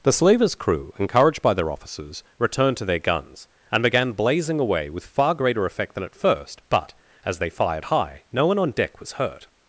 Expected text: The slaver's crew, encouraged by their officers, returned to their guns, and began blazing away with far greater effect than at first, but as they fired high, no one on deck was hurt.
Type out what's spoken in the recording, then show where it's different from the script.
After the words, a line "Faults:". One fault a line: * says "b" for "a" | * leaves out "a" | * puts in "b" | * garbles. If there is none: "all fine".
The slaver's crew, encouraged by their officers, returned to their guns, and began blazing away with far greater effect than at first, but as they fired high, no one on deck was hurt.
Faults:
all fine